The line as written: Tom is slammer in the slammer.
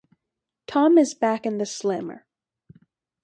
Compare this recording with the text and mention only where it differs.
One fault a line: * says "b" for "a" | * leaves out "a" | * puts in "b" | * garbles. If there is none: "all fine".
* says "back" for "slammer"